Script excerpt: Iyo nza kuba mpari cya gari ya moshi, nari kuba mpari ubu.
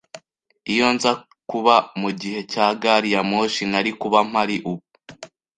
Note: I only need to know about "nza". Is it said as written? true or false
true